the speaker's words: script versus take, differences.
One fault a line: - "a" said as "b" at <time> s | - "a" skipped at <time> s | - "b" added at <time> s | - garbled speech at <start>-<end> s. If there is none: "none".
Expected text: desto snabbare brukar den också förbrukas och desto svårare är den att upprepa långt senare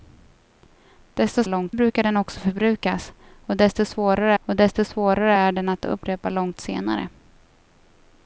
- "snabbare" said as "långt" at 1.5 s
- "och desto svårare" added at 4.4 s